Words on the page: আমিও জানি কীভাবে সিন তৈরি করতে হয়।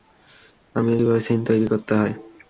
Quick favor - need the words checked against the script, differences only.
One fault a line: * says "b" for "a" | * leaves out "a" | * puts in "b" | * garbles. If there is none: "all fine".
* leaves out "জানি"